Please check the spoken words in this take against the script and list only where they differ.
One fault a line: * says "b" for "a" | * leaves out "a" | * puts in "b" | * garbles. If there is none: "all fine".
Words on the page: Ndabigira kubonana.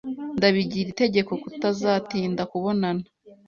* puts in "itegeko kutazatinda"